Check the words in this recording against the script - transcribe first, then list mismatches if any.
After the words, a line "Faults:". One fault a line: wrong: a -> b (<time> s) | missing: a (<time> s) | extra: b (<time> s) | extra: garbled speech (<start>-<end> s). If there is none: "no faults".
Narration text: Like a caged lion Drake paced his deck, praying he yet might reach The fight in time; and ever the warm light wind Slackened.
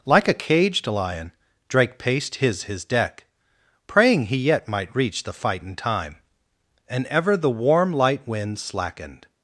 Like a caged lion Drake paced his his deck, praying he yet might reach The fight in time; and ever the warm light wind Slackened.
Faults:
extra: his (2.6 s)